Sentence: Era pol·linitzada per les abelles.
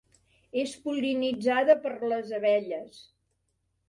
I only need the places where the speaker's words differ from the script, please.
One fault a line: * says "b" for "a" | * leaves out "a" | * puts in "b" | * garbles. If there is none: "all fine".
* says "És" for "Era"